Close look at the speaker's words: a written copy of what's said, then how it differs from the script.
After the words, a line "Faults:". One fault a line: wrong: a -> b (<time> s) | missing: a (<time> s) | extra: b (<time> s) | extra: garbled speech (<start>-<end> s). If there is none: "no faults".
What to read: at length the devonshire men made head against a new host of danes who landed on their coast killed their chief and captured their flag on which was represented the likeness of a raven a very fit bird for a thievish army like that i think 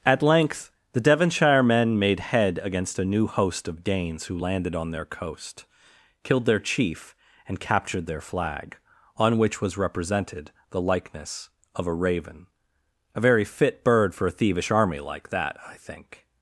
at length the devonshire men made head against a new host of danes who landed on their coast killed their chief and captured their flag on which was represented the likeness of a raven a very fit bird for a thievish army like that i think
Faults:
no faults